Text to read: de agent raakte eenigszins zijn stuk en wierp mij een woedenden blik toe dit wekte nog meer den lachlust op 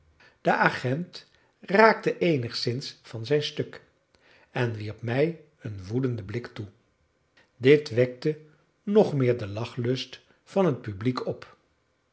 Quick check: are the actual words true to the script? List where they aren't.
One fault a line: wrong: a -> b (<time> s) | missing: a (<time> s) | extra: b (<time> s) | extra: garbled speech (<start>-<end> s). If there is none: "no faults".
extra: van (3.0 s)
extra: van het publiek (10.4 s)